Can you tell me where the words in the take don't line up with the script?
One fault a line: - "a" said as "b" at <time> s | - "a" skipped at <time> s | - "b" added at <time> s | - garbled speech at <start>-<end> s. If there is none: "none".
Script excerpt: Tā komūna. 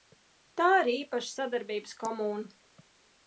- "ir īpaša sadarbības" added at 0.8 s